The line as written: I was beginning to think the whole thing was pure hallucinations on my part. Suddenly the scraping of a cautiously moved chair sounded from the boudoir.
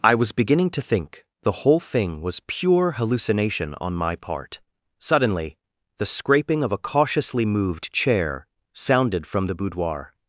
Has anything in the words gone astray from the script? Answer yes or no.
yes